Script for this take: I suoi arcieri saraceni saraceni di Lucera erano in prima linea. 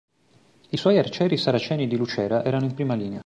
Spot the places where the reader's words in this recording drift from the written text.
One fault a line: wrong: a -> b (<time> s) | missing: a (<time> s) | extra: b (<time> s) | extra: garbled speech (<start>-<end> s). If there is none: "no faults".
missing: saraceni (1.9 s)